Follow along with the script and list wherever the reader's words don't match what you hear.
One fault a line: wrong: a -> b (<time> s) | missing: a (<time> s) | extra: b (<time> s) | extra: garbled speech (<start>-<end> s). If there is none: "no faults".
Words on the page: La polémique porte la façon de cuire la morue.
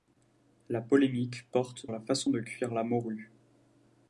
no faults